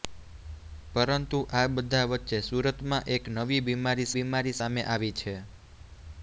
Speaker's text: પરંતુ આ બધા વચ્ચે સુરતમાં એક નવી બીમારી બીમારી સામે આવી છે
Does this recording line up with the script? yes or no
yes